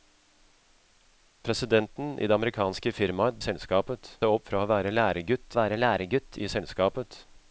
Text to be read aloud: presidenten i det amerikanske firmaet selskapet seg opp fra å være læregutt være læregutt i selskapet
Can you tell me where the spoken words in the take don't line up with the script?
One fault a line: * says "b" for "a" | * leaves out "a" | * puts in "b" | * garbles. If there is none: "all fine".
all fine